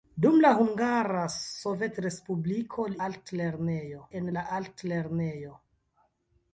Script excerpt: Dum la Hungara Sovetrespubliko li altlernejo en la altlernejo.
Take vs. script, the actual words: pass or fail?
pass